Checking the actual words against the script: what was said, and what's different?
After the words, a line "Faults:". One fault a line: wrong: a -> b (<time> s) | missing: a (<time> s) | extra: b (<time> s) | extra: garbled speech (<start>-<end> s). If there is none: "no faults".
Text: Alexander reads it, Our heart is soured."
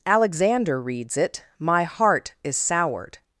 Alexander reads it, My heart is soured."
Faults:
wrong: Our -> My (1.6 s)